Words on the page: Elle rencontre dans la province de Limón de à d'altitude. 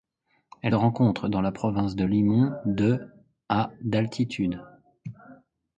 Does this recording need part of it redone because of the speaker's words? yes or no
no